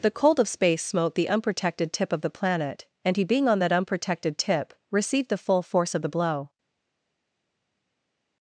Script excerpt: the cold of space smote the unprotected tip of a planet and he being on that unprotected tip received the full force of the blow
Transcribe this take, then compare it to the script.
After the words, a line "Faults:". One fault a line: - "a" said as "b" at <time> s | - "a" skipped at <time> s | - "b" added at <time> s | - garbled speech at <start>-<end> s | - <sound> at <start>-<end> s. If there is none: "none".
the cold of space smote the unprotected tip of the planet and he being on that unprotected tip received the full force of the blow
Faults:
- "a" said as "the" at 2.2 s